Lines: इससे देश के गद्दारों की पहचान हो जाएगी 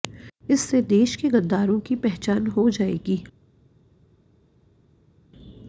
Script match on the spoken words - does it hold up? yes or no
yes